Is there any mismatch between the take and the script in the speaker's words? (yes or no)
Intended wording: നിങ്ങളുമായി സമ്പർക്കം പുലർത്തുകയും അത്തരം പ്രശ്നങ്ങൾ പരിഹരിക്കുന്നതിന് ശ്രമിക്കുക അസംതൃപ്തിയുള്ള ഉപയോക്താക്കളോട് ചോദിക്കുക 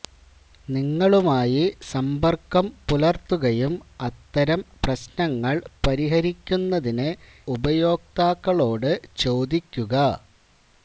yes